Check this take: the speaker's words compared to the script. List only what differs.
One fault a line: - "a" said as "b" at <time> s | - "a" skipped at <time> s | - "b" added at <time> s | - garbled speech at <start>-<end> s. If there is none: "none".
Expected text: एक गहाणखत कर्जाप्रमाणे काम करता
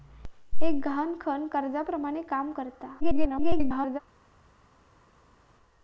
- garbled speech at 3.0-4.0 s